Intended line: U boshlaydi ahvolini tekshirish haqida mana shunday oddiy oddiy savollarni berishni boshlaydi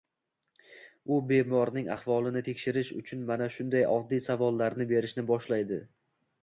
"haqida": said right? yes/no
no